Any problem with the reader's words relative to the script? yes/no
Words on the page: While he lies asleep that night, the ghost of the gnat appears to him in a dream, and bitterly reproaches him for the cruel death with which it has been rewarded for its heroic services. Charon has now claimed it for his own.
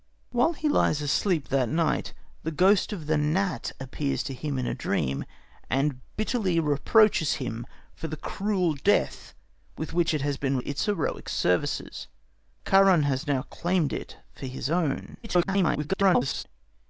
yes